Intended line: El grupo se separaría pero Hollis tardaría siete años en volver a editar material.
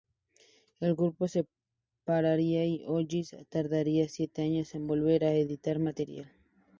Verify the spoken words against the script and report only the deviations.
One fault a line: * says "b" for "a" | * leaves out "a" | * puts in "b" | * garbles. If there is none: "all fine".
* says "y" for "pero"